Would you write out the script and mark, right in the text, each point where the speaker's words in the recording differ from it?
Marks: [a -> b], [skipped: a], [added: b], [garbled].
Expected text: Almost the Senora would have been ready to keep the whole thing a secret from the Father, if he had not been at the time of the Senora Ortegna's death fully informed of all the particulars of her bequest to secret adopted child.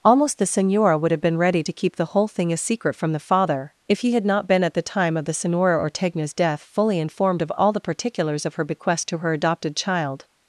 Almost the Senora would have been ready to keep the whole thing a secret from the Father, if he had not been at the time of the Senora Ortegna's death fully informed of all the particulars of her bequest to [secret -> her] adopted child.